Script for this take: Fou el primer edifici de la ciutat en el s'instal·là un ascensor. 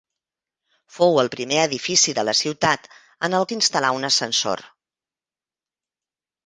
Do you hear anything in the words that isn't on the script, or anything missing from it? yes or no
no